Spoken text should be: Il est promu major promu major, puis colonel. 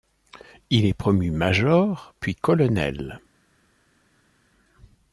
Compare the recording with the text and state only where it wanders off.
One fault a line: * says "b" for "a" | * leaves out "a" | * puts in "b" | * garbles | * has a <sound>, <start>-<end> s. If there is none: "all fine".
* leaves out "promu major"